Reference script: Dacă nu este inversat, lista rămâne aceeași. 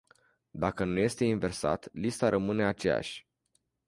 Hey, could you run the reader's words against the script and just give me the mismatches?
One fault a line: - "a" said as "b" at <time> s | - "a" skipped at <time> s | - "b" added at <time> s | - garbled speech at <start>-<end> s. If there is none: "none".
none